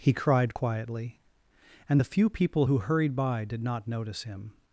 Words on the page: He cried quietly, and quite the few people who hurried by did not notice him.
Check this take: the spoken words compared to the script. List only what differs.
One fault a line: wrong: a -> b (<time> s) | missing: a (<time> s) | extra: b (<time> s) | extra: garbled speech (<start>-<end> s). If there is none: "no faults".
missing: quite (2.0 s)